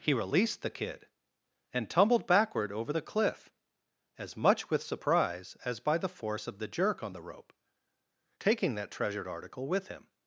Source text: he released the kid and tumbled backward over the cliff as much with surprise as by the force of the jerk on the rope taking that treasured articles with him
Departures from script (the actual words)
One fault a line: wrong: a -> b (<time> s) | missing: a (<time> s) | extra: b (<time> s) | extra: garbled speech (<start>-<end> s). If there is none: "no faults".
wrong: articles -> article (9.3 s)